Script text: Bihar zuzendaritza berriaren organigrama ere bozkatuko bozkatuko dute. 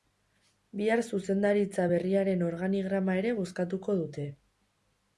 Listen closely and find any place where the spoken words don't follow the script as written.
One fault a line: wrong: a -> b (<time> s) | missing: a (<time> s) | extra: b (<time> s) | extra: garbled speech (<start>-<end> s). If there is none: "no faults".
missing: bozkatuko (4.0 s)